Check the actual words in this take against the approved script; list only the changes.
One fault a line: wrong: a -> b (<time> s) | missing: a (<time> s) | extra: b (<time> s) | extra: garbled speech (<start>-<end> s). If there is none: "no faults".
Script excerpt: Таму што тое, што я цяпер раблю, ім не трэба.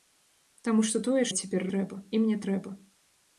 missing: што (1.2 s)
wrong: раблю -> трэба (1.7 s)